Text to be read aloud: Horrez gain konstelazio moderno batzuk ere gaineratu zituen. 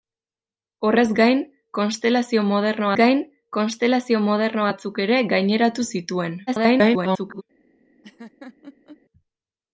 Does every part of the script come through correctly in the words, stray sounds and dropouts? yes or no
no